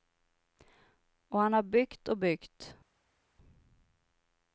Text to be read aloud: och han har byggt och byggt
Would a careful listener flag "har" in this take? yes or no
no